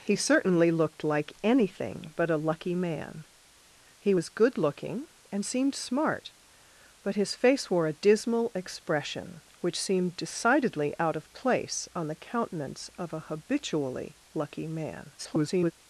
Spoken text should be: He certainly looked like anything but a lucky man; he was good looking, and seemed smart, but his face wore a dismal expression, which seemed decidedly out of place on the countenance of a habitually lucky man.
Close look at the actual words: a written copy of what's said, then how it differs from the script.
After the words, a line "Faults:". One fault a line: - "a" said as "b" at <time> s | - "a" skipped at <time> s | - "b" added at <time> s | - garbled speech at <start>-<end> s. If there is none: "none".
He certainly looked like anything but a lucky man; he was good looking, and seemed smart, but his face wore a dismal expression, which seemed decidedly out of place on the countenance of a habitually lucky man. [garbled]
Faults:
- garbled speech at 15.2-15.7 s